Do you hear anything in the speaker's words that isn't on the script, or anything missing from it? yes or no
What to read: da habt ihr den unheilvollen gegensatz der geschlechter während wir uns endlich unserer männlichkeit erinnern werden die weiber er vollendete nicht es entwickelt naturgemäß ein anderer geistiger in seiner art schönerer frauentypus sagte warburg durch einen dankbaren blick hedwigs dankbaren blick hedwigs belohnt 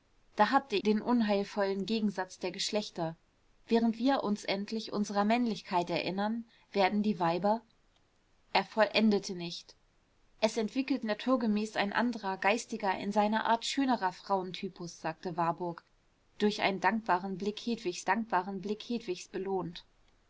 no